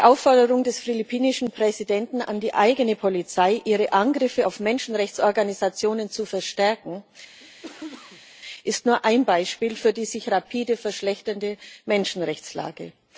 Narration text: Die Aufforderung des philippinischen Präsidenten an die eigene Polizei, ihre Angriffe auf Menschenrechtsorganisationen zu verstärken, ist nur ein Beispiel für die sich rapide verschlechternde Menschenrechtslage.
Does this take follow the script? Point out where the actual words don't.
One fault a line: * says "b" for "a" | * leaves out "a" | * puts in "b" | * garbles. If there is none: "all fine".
all fine